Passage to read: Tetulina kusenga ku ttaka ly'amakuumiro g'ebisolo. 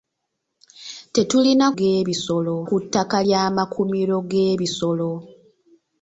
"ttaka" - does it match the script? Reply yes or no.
yes